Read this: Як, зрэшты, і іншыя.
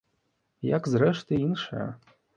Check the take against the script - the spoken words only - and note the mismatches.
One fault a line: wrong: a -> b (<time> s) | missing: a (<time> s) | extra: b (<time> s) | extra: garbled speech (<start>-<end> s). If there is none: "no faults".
no faults